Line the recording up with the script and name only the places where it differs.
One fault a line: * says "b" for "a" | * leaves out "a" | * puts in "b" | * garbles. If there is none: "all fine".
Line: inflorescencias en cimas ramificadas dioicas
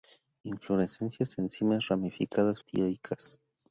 all fine